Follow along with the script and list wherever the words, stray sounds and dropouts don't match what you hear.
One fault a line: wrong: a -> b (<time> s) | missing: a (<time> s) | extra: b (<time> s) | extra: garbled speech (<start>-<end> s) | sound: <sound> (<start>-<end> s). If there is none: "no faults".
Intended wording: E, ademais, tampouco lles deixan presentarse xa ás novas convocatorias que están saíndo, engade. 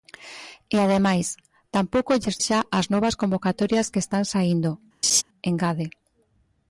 missing: deixan presentarse (2.4 s)
sound: laugh (5.0-5.2 s)